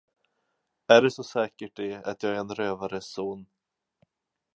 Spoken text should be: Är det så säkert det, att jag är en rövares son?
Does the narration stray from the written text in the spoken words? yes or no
no